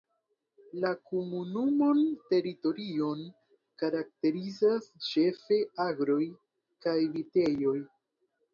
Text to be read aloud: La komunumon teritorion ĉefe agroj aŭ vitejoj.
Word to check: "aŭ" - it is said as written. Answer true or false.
false